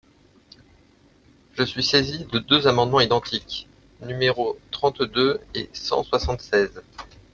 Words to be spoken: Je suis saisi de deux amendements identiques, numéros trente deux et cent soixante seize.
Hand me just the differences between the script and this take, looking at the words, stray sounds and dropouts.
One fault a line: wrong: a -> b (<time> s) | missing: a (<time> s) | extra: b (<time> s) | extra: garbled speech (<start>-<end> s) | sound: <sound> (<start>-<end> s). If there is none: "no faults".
no faults